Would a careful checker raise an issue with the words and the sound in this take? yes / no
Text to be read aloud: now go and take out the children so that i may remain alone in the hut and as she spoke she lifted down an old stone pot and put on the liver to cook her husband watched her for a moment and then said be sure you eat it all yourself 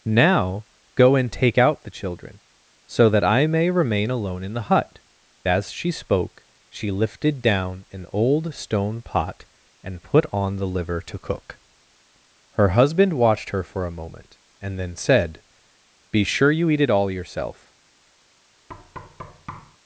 yes